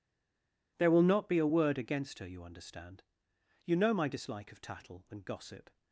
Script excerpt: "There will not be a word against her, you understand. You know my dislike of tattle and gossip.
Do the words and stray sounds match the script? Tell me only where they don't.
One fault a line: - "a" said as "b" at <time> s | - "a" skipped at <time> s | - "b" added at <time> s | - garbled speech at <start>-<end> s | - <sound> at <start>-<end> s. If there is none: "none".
none